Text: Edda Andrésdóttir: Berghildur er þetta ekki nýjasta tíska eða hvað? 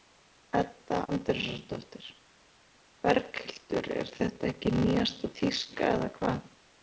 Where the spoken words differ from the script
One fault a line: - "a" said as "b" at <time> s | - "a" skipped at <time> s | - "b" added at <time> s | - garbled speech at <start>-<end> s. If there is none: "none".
none